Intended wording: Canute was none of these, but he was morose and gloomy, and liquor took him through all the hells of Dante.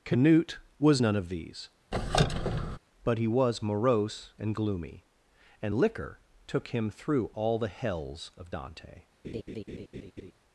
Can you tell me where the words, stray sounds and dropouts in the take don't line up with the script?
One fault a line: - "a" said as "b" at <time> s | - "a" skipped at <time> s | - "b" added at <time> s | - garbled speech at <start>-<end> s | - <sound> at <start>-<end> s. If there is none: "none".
- squeak at 1.9-2.8 s
- laugh at 9.2-10.3 s